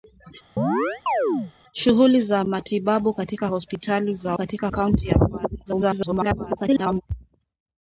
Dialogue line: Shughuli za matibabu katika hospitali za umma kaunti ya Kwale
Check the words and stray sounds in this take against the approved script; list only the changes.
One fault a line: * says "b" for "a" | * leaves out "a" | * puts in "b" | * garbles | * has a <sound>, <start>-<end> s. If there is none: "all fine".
* has a chirp, 0.6-1.5 s
* says "katika" for "umma"
* garbles